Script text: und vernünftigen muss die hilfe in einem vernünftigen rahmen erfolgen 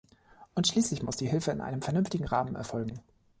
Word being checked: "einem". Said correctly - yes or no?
yes